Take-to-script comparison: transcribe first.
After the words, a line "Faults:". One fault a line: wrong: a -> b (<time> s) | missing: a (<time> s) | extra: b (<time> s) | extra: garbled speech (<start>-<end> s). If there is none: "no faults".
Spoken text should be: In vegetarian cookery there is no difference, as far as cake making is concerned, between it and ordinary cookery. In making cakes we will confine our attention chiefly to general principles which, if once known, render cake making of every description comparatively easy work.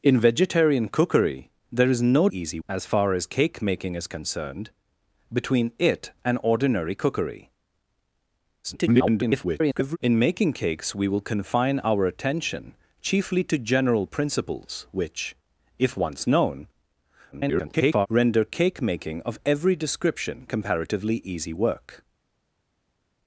In vegetarian cookery there is no easy, as far as cake making is concerned, between it and ordinary cookery. [garbled] In making cakes we will confine our attention chiefly to general principles which, if once known, [garbled] render cake making of every description comparatively easy work.
Faults:
wrong: difference -> easy (2.3 s)
extra: garbled speech (8.6-10.0 s)
extra: garbled speech (17.3-18.1 s)